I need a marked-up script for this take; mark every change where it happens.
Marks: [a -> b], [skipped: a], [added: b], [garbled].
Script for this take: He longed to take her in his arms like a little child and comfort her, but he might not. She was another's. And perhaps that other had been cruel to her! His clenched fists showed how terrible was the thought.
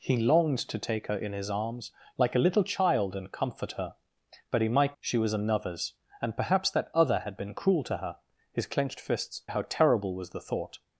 He longed to take her in his arms like a little child and comfort her, but he might [skipped: not.] She was another's. And perhaps that other had been cruel to her! His clenched fists [skipped: showed] how terrible was the thought.